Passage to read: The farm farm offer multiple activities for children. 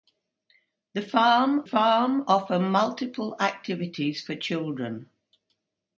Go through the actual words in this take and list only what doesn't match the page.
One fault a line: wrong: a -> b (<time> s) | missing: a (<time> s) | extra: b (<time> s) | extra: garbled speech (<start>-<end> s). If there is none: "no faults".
no faults